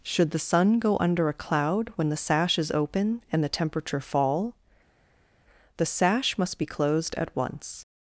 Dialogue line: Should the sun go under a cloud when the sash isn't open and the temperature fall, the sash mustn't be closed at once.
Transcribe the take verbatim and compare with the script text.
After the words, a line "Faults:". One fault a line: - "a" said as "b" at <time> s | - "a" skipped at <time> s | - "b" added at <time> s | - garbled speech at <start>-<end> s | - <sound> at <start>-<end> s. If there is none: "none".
Should the sun go under a cloud when the sash is open and the temperature fall, the sash must be closed at once.
Faults:
- "isn't" said as "is" at 2.6 s
- "mustn't" said as "must" at 6.4 s